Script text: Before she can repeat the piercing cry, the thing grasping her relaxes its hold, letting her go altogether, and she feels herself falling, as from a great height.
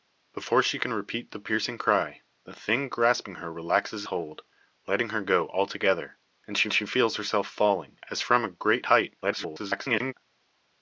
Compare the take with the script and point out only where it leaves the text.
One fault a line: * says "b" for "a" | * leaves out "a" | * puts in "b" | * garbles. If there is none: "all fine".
* leaves out "its"
* puts in "she"
* garbles